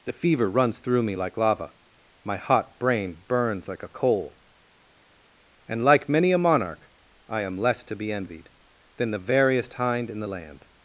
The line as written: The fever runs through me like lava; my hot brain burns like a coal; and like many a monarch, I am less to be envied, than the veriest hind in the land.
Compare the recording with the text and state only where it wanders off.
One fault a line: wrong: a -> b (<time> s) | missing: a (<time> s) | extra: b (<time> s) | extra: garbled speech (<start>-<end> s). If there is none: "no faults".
no faults